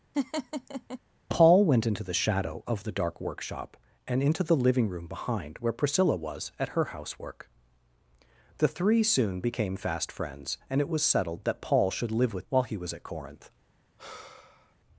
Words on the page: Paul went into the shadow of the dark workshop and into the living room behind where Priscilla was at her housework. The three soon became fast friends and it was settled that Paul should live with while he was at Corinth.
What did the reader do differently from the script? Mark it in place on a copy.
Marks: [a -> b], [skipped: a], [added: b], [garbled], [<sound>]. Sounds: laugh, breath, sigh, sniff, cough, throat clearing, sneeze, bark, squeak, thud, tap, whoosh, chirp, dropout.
[laugh] Paul went into the shadow of the dark workshop and into the living room behind where Priscilla was at her housework. The three soon became fast friends and it was settled that Paul should live with while he was at Corinth. [sigh]